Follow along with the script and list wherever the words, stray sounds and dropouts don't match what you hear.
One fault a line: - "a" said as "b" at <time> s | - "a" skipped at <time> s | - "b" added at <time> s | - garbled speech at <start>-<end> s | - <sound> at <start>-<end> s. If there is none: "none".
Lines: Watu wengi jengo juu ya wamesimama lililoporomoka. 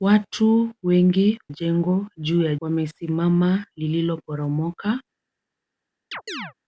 - chirp at 6.1-6.5 s